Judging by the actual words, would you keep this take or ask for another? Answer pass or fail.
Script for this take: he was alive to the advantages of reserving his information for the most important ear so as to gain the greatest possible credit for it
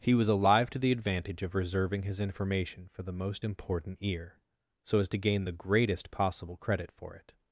fail